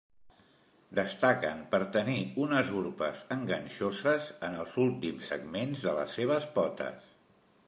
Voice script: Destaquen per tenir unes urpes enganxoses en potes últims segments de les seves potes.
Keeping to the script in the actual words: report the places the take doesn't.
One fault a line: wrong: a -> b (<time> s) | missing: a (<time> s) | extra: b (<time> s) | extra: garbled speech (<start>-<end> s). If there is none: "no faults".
wrong: potes -> els (4.7 s)